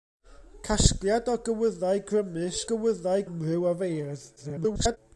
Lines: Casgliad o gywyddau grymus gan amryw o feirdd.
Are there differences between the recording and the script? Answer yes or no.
yes